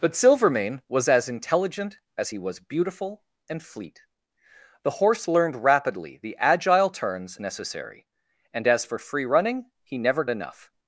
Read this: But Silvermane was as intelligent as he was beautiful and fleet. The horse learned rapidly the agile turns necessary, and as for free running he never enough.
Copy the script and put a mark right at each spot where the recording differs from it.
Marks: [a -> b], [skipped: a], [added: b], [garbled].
But Silvermane was as intelligent as he was beautiful and fleet. The horse learned rapidly the agile turns necessary, and as for free running he never enough.